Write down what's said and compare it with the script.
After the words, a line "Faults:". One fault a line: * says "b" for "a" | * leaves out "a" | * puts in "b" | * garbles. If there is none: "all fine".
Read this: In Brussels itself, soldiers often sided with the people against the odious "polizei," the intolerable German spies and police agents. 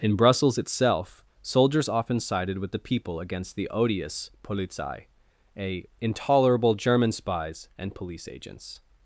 In Brussels itself, soldiers often sided with the people against the odious "polizei," a intolerable German spies and police agents.
Faults:
* says "a" for "the"